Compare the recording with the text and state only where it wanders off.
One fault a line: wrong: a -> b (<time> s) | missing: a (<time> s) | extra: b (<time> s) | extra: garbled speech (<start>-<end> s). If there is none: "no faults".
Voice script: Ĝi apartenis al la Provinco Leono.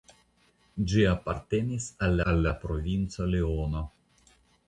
extra: al (2.3 s)